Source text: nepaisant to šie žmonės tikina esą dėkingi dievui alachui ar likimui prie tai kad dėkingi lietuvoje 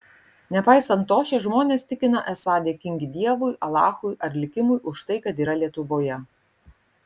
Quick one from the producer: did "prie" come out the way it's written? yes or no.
no